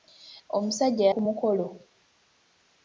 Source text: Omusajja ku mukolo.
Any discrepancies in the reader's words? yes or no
no